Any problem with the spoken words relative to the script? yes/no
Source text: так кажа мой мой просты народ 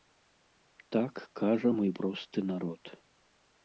yes